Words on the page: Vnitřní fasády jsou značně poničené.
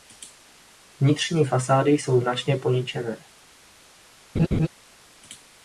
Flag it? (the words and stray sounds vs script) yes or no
yes